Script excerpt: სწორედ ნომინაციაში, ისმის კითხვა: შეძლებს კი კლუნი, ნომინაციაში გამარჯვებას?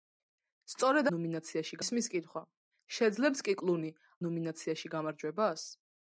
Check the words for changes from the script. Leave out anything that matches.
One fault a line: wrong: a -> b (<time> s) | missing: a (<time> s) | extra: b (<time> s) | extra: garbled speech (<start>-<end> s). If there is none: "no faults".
no faults